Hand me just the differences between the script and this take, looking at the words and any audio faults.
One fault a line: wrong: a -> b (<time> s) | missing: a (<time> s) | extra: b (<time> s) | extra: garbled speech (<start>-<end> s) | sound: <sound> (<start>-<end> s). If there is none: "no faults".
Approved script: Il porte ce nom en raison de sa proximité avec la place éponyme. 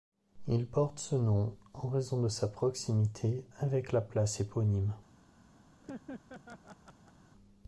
sound: laugh (5.8-7.1 s)